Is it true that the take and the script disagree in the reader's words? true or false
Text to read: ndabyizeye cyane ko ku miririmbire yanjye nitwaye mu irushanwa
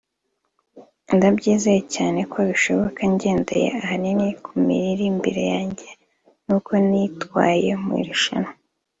true